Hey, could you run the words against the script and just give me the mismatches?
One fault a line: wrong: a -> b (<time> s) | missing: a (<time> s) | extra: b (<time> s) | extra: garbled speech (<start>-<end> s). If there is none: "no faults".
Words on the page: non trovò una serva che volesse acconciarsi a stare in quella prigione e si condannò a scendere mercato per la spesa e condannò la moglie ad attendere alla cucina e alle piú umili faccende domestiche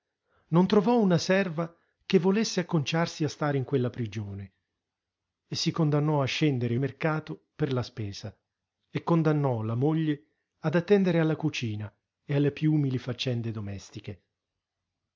no faults